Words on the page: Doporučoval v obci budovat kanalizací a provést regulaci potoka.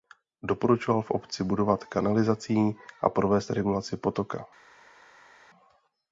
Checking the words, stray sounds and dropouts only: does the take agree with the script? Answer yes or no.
yes